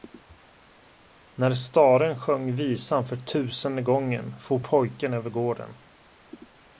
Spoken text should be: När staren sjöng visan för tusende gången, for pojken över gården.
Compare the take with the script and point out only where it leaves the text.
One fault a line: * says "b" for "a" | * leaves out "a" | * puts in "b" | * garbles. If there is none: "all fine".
all fine